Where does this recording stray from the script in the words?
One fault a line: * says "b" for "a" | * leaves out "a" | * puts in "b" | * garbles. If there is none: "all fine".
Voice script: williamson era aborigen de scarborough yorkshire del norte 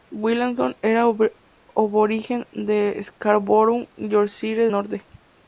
* leaves out "del"